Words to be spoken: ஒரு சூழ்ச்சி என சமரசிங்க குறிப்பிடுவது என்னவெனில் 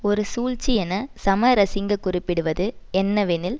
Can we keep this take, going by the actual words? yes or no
yes